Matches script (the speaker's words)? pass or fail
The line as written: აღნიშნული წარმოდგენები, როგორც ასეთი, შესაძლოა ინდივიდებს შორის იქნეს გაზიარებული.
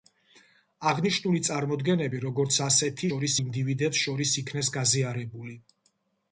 fail